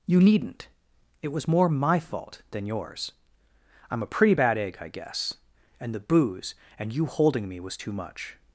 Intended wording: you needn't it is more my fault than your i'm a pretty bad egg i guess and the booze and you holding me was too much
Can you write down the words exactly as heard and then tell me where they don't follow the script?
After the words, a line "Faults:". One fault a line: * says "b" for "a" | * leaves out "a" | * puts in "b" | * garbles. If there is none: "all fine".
you needn't it was more my fault than yours i'm a pretty bad egg i guess and the booze and you holding me was too much
Faults:
* says "was" for "is"
* says "yours" for "your"